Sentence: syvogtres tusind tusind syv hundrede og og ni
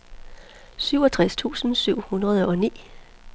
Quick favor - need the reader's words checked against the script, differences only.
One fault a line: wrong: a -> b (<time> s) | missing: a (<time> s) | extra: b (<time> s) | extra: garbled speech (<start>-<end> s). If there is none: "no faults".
missing: tusind (1.7 s)
missing: og (2.6 s)